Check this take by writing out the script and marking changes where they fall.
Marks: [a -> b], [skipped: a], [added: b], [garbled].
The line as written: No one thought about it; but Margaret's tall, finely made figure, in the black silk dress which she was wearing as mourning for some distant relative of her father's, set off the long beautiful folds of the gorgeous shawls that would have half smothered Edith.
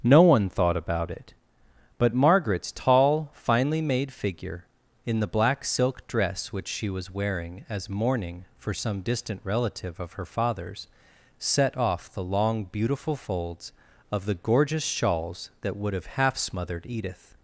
No one thought about it; but Margaret's tall, finely made figure, in the black silk dress which she was wearing as mourning for some distant relative of her father's, set off the long beautiful folds of the gorgeous shawls that would have half smothered Edith.